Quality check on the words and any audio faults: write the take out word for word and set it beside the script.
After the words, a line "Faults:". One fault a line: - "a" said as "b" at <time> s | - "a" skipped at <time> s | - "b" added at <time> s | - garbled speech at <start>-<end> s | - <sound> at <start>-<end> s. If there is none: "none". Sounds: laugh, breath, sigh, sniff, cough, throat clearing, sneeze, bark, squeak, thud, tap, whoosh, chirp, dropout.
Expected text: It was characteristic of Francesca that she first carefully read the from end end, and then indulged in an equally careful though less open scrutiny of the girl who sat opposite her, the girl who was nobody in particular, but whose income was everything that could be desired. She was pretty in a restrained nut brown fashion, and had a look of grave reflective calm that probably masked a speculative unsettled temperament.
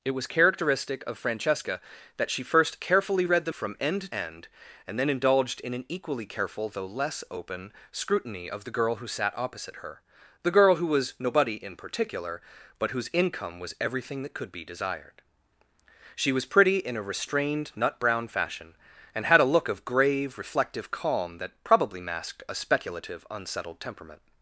It was characteristic of Francesca that she first carefully read the from end end, and then indulged in an equally careful though less open scrutiny of the girl who sat opposite her, the girl who was nobody in particular, but whose income was everything that could be desired. She was pretty in a restrained nut brown fashion, and had a look of grave reflective calm that probably masked a speculative unsettled temperament.
Faults:
none